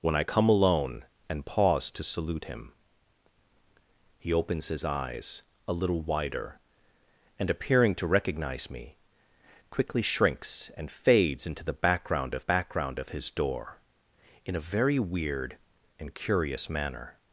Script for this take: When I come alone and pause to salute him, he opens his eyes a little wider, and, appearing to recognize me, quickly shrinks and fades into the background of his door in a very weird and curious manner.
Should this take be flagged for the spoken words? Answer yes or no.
yes